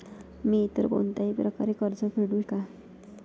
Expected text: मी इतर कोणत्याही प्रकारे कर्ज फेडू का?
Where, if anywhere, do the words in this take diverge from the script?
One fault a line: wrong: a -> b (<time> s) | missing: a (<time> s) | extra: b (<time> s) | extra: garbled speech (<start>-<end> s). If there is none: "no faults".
no faults